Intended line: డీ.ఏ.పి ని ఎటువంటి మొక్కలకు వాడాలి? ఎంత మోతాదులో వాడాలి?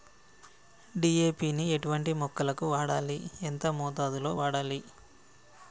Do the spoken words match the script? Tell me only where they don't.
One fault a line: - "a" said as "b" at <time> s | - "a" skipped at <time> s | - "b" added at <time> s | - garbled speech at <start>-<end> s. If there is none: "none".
none